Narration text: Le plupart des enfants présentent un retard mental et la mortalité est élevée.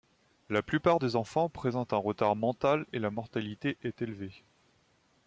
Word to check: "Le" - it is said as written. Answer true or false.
false